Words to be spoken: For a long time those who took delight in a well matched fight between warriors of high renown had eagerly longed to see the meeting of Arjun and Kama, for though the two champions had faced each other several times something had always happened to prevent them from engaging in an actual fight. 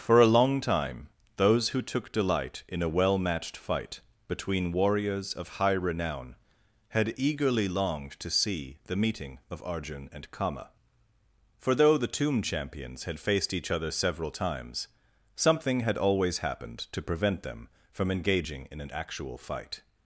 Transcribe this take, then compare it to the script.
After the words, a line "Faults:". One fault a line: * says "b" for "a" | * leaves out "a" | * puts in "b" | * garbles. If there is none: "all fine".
For a long time those who took delight in a well matched fight between warriors of high renown had eagerly longed to see the meeting of Arjun and Kama, for though the tomb champions had faced each other several times something had always happened to prevent them from engaging in an actual fight.
Faults:
* says "tomb" for "two"